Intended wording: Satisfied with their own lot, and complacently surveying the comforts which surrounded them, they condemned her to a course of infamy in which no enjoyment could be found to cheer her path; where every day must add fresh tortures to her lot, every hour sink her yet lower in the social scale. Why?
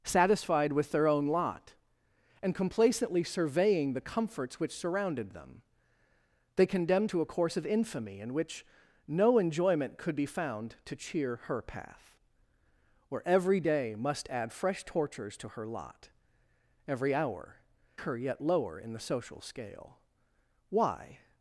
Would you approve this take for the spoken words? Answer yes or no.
no